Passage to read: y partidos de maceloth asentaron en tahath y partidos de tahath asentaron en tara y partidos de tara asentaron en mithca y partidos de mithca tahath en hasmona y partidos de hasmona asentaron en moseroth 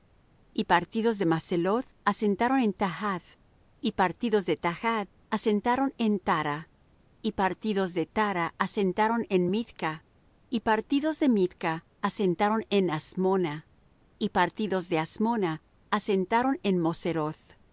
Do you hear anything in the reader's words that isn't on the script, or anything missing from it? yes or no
yes